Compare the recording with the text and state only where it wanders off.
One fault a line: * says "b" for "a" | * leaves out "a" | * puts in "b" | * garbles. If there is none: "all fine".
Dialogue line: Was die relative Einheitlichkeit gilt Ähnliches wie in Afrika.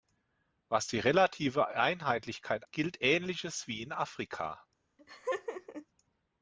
all fine